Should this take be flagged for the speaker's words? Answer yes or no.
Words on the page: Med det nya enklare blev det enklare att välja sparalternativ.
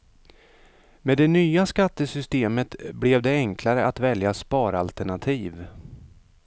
yes